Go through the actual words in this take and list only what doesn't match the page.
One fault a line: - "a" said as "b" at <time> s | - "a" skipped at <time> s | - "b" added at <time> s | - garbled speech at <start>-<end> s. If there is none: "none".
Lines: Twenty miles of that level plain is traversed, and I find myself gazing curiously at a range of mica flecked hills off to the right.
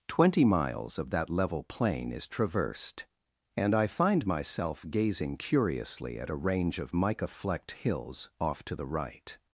none